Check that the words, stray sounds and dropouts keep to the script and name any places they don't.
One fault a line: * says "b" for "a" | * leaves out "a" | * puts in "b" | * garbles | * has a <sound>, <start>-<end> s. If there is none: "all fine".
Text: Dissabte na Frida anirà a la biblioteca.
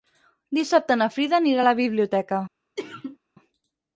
* has a sneeze, 2.8-3.2 s